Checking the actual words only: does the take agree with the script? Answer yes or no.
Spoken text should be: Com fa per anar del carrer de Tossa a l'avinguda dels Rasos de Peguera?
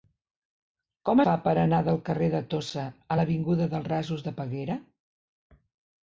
yes